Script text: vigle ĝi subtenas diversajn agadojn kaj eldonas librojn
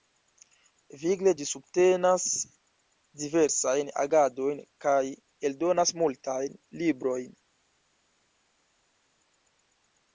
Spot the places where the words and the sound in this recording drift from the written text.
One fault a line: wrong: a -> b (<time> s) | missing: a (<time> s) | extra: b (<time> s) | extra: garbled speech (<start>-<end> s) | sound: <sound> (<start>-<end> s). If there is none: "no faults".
extra: multajn (6.0 s)